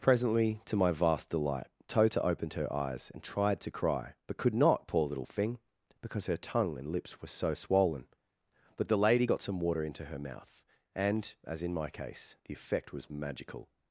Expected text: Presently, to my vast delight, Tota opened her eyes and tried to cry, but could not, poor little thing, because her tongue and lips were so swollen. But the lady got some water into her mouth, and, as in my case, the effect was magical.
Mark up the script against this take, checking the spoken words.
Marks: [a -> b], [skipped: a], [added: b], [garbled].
Presently, to my vast delight, Tota opened her eyes and tried to cry, but could not, poor little thing, because her tongue and lips were so swollen. But the lady got some water into her mouth, and, as in my case, the effect was magical.